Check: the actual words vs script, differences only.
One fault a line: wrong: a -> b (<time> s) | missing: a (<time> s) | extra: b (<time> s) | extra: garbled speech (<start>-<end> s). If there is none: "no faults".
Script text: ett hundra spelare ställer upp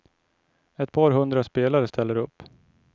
extra: par (0.9 s)